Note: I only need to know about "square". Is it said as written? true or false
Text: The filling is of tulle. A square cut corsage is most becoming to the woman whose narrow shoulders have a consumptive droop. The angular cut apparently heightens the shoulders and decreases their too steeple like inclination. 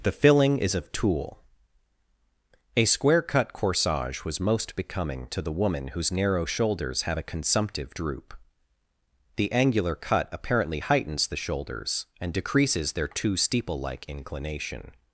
true